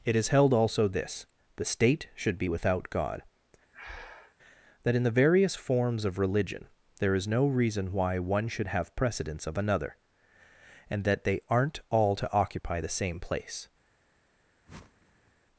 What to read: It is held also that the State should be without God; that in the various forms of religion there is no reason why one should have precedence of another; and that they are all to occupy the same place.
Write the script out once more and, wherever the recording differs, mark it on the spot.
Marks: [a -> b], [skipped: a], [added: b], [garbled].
It is held also [that -> this] the State should be without God; that in the various forms of religion there is no reason why one should have precedence of another; and that they [are -> aren't] all to occupy the same place.